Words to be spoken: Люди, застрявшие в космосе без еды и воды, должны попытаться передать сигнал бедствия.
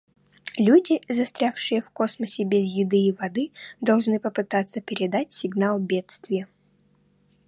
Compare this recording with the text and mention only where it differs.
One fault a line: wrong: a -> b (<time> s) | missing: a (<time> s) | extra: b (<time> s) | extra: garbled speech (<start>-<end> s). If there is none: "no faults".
no faults